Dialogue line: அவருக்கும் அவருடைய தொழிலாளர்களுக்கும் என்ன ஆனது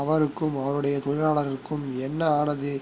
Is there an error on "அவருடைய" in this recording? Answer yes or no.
no